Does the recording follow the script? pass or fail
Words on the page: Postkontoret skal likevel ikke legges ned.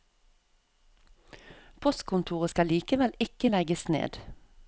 pass